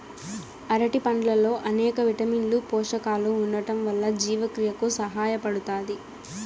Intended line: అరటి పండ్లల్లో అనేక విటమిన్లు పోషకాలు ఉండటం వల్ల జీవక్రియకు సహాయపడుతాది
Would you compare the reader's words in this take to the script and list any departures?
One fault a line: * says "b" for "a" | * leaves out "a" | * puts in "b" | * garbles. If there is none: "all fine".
all fine